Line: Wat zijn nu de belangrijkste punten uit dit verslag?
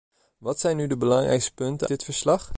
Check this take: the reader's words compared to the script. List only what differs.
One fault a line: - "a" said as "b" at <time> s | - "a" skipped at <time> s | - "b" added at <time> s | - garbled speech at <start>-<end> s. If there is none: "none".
- "uit" skipped at 1.9 s